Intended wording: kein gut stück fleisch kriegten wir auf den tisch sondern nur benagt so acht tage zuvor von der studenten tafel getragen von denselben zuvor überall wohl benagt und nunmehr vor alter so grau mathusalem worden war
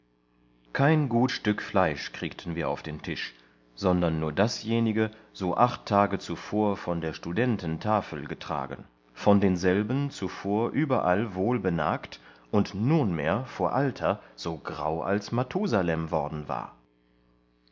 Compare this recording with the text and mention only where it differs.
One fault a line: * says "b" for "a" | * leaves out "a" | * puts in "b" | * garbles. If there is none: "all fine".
* says "dasjenige" for "benagt"
* puts in "als"